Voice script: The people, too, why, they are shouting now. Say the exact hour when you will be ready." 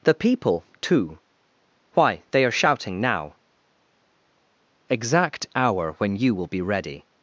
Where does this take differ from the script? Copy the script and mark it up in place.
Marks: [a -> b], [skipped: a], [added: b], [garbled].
The people, too, why, they are shouting now. [skipped: Say the] exact hour when you will be ready."